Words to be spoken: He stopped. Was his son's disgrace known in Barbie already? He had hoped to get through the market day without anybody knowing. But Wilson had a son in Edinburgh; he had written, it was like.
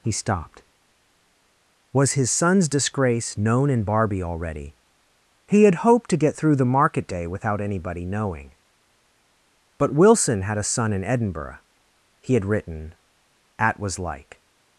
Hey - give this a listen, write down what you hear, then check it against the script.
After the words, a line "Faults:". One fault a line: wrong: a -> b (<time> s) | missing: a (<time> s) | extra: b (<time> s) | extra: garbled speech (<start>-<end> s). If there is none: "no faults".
He stopped. Was his son's disgrace known in Barbie already? He had hoped to get through the market day without anybody knowing. But Wilson had a son in Edinburgh; he had written, at was like.
Faults:
wrong: it -> at (13.6 s)